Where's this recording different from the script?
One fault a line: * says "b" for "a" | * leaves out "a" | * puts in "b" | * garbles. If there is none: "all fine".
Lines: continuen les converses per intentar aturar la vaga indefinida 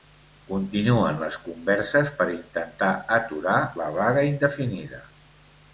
all fine